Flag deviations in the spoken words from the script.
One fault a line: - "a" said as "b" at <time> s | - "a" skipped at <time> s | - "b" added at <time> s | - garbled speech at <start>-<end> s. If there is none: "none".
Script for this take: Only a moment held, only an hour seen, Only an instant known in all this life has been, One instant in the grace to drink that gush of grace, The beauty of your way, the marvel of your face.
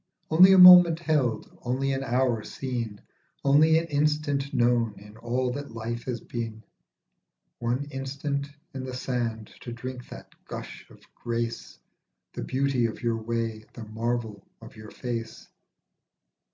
- "this" said as "that" at 5.5 s
- "grace" said as "sand" at 8.9 s